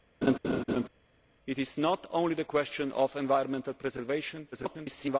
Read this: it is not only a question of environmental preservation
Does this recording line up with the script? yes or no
no